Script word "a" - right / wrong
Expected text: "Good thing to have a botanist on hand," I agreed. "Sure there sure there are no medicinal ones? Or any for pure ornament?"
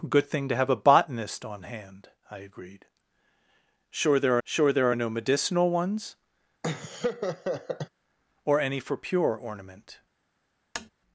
right